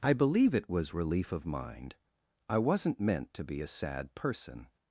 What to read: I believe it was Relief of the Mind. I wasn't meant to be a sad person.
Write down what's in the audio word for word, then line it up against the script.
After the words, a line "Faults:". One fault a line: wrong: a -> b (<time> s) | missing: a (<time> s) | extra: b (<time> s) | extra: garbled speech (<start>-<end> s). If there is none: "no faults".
I believe it was Relief of Mind. I wasn't meant to be a sad person.
Faults:
missing: the (1.4 s)